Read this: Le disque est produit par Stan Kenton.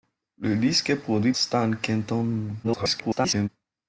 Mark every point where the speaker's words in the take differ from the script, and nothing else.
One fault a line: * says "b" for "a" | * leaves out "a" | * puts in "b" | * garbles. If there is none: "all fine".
* leaves out "par"
* garbles